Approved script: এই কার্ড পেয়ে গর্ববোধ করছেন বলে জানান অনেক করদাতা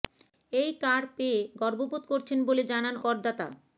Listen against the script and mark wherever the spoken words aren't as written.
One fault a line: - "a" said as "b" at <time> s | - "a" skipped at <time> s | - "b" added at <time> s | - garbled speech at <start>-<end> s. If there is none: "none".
- "অনেক" skipped at 3.0 s